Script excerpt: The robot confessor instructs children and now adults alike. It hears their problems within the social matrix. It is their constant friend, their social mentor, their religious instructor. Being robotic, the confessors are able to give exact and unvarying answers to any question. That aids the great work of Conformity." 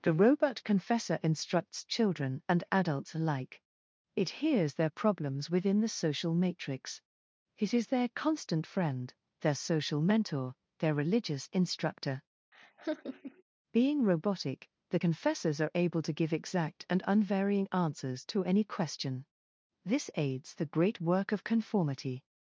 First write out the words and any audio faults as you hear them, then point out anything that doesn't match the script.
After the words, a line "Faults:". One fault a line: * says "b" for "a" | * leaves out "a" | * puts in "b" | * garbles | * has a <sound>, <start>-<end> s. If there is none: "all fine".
The robot confessor instructs children and adults alike. It hears their problems within the social matrix. It is their constant friend, their social mentor, their religious instructor. Being robotic, the confessors are able to give exact and unvarying answers to any question. This aids the great work of Conformity."
Faults:
* leaves out "now"
* has a laugh, 12.5-13.4 s
* says "This" for "That"